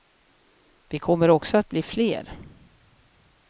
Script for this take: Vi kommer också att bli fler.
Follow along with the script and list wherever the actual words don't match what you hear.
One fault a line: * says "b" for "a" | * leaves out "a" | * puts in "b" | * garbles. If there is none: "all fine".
all fine